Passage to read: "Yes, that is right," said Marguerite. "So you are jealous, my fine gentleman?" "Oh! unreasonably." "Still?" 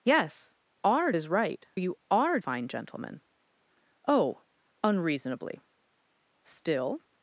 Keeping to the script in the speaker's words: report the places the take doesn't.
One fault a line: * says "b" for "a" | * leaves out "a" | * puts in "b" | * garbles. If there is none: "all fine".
* says "are" for "that"
* leaves out "said Marguerite So"
* leaves out "jealous my"